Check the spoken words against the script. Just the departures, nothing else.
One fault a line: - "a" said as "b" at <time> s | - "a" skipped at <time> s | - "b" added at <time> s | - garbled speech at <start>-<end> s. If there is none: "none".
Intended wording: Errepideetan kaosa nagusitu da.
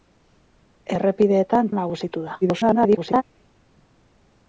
- "kaosa" skipped at 1.7 s
- garbled speech at 2.4-3.2 s